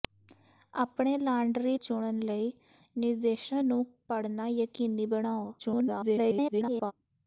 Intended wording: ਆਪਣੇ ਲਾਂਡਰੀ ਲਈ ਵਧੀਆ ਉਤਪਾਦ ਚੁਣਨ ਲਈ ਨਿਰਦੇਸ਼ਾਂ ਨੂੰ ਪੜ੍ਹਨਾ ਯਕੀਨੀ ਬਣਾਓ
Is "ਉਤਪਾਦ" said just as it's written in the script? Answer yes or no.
no